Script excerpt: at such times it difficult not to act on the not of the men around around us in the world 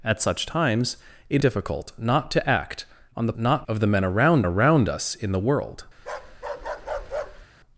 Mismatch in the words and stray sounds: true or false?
true